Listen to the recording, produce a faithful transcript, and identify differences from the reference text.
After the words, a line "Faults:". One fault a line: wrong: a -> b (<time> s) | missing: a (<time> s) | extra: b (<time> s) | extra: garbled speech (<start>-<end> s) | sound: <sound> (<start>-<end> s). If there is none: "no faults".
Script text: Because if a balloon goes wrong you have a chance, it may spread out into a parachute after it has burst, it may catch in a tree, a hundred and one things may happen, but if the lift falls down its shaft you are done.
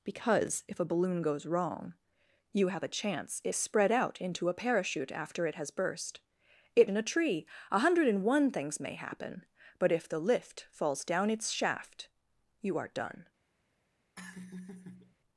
Because if a balloon goes wrong you have a chance, it spread out into a parachute after it has burst, it in a tree, a hundred and one things may happen, but if the lift falls down its shaft you are done.
Faults:
missing: may (3.5 s)
missing: may catch (6.9 s)
sound: laugh (14.2-15.2 s)